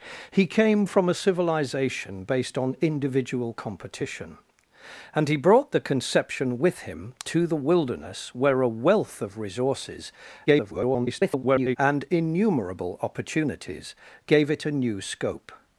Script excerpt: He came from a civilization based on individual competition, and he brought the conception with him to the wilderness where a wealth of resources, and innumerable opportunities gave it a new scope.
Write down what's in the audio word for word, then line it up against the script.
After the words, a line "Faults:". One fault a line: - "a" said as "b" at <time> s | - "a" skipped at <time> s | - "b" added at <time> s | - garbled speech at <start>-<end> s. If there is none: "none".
He came from a civilization based on individual competition, and he brought the conception with him to the wilderness where a wealth of resources, [garbled] and innumerable opportunities gave it a new scope.
Faults:
- garbled speech at 10.5-11.8 s